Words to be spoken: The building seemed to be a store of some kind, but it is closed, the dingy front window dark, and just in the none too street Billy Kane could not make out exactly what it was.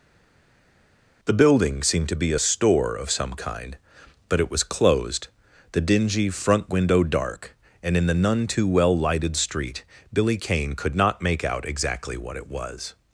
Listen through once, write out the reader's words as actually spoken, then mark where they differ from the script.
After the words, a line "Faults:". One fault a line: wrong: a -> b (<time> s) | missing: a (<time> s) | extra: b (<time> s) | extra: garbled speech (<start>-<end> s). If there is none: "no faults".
The building seemed to be a store of some kind, but it was closed, the dingy front window dark, and in the none too well lighted street Billy Kane could not make out exactly what it was.
Faults:
wrong: is -> was (4.5 s)
missing: just (7.9 s)
extra: well lighted (8.7 s)